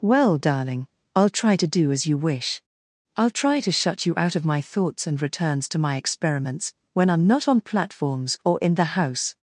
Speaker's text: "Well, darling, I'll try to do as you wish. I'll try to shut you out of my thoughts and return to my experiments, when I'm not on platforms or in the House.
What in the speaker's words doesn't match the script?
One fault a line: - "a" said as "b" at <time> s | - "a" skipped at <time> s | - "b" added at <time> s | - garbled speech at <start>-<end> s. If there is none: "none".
- "return" said as "returns" at 5.2 s